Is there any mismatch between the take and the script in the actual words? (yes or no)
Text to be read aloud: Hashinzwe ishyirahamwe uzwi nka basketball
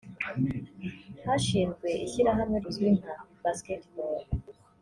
no